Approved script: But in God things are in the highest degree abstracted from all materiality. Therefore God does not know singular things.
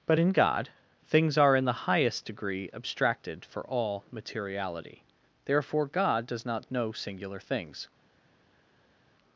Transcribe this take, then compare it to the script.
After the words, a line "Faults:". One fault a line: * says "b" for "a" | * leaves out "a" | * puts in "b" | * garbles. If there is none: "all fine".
But in God things are in the highest degree abstracted for all materiality. Therefore God does not know singular things.
Faults:
* says "for" for "from"